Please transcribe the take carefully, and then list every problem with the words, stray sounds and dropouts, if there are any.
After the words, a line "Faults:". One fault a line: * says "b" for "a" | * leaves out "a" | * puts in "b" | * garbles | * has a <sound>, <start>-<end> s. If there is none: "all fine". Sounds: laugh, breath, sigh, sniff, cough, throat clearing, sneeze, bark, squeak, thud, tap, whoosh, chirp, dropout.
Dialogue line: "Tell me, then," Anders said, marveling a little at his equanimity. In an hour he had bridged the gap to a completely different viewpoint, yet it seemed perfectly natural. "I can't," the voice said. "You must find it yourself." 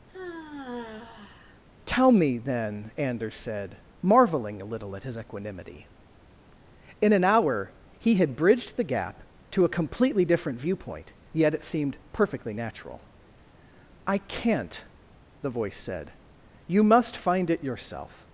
"Tell me, then," Anders said, marveling a little at his equanimity. In an hour he had bridged the gap to a completely different viewpoint, yet it seemed perfectly natural. "I can't," the voice said. "You must find it yourself."
Faults:
* has a sigh, 0.1-1.6 s